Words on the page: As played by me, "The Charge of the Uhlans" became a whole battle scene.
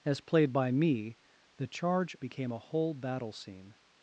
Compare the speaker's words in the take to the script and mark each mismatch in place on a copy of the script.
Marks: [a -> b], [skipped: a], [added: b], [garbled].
As played by me, "The Charge [skipped: of the Uhlans"] became a whole battle scene.